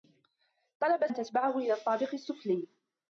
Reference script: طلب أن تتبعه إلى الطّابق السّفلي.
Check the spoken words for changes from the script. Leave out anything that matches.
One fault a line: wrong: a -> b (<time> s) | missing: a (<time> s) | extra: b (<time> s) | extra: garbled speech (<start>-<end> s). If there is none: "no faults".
no faults